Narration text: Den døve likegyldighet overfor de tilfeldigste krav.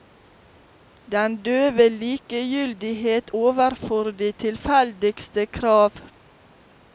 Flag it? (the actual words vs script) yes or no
no